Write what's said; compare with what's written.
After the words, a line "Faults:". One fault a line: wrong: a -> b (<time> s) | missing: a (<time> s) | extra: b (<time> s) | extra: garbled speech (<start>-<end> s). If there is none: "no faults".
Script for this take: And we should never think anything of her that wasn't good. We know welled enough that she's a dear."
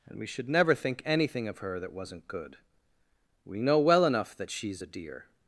And we should never think anything of her that wasn't good. We know well enough that she's a dear."
Faults:
wrong: welled -> well (3.8 s)